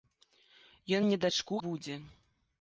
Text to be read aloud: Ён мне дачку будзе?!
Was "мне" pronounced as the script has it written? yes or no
yes